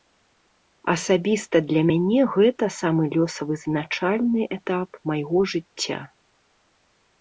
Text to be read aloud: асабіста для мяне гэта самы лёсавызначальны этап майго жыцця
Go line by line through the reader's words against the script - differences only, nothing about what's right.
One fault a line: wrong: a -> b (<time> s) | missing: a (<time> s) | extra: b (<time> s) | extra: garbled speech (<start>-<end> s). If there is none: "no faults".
no faults